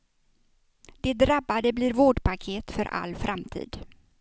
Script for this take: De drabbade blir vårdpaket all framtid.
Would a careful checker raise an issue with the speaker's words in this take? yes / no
yes